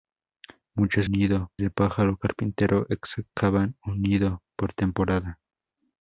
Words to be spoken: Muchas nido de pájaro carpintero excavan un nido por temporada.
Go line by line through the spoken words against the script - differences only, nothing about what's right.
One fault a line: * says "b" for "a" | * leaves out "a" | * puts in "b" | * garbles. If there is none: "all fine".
all fine